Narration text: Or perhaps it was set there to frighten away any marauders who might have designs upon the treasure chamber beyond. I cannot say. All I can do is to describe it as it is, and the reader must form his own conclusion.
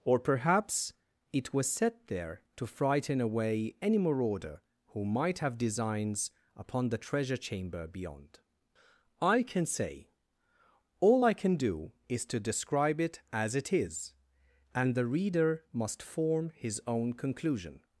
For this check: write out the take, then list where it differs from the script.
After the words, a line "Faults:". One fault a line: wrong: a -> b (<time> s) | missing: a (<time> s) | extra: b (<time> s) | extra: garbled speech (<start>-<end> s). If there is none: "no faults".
Or perhaps it was set there to frighten away any marauder who might have designs upon the treasure chamber beyond. I can say. All I can do is to describe it as it is, and the reader must form his own conclusion.
Faults:
wrong: marauders -> marauder (4.0 s)
wrong: cannot -> can (9.4 s)